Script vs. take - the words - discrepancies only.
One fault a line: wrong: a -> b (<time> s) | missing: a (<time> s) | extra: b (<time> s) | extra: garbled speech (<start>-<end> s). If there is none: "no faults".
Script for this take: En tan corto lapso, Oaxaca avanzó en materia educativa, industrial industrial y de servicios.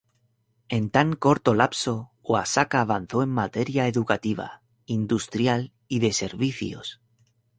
missing: industrial (5.7 s)